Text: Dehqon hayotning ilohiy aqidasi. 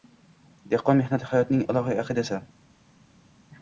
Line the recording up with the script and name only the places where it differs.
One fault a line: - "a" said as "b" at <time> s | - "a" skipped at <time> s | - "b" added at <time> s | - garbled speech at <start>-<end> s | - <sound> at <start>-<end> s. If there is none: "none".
- "mehnati" added at 1.0 s